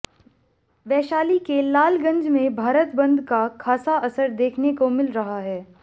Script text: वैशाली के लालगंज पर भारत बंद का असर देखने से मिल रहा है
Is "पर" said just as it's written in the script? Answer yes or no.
no